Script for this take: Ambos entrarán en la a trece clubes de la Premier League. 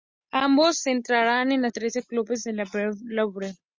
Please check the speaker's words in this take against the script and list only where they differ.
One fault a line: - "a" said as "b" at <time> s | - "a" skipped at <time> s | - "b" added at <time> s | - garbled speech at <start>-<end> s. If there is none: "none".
none